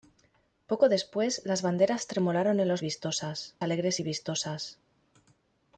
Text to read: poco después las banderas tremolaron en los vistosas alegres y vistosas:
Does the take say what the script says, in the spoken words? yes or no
yes